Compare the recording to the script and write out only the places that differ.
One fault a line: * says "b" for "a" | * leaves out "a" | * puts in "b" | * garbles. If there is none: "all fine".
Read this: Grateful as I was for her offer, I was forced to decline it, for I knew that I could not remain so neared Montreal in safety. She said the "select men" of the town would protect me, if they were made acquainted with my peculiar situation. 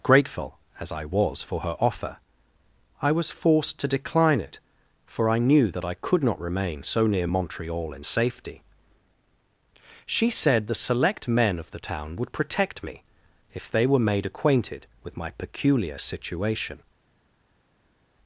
* says "near" for "neared"